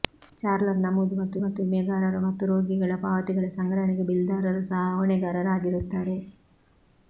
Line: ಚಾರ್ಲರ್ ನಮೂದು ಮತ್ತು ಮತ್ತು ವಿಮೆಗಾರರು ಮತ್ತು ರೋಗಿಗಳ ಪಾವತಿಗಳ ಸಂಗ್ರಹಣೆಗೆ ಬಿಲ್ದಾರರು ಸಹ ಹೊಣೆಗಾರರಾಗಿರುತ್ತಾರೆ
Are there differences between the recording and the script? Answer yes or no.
no